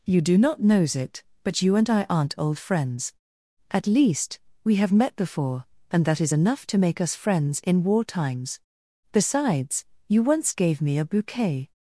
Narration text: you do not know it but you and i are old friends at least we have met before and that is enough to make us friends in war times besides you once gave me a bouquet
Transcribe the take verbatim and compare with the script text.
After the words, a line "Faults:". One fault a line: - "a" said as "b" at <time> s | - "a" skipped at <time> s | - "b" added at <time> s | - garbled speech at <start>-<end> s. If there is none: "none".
you do not knows it but you and i aren't old friends at least we have met before and that is enough to make us friends in war times besides you once gave me a bouquet
Faults:
- "know" said as "knows" at 0.6 s
- "are" said as "aren't" at 2.1 s